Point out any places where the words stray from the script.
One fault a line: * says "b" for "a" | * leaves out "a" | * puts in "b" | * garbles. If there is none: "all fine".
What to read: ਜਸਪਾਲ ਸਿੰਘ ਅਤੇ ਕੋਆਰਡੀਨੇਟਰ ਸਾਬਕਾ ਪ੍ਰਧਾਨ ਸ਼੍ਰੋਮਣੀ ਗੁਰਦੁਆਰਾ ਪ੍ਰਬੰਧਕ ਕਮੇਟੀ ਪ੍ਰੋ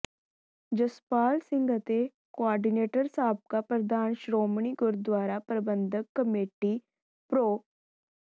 all fine